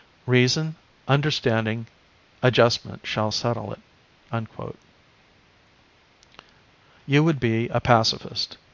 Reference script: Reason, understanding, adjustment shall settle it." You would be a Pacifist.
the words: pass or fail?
pass